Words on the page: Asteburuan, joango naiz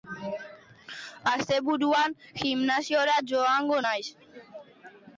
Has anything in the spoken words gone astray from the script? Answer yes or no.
yes